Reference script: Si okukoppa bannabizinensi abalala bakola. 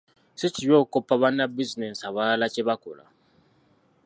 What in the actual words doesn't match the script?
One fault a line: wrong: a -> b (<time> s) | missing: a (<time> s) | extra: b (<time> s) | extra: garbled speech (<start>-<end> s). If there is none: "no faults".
extra: kibi (0.6 s)
extra: kye (2.5 s)